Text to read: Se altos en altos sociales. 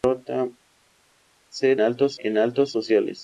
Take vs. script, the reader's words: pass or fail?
pass